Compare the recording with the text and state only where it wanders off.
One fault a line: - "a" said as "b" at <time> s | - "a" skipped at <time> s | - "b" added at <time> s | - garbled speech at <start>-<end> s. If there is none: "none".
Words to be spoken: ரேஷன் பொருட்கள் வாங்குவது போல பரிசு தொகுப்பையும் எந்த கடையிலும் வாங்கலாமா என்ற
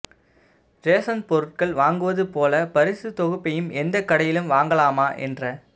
none